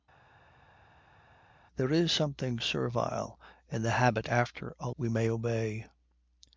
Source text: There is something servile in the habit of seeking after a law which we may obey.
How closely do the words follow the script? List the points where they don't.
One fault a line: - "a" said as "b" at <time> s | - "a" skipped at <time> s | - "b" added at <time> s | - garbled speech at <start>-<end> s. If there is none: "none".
- "of seeking" skipped at 4.3 s
- "law which" skipped at 4.9 s